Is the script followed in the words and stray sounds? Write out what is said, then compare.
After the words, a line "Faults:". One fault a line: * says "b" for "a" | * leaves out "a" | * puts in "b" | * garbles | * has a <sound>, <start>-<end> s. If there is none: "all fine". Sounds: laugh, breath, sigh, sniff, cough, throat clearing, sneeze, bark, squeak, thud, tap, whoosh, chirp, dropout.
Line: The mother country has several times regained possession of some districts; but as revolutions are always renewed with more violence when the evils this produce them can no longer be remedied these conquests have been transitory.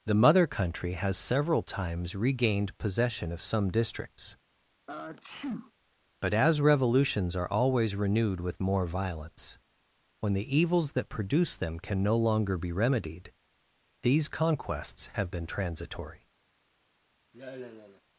The mother country has several times regained possession of some districts; but as revolutions are always renewed with more violence when the evils that produce them can no longer be remedied these conquests have been transitory.
Faults:
* has a sneeze, 4.9-5.7 s
* says "that" for "this"
* has a sigh, 17.3-18.0 s